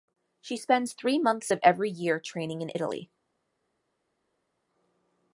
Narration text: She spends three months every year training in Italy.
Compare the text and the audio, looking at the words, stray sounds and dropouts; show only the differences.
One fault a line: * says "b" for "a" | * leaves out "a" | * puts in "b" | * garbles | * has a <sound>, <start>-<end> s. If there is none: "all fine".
* puts in "of"